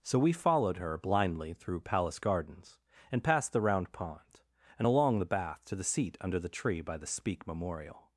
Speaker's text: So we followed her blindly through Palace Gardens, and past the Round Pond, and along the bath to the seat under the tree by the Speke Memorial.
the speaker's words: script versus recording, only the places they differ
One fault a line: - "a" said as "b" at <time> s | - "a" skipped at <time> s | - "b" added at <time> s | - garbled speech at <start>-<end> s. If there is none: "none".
none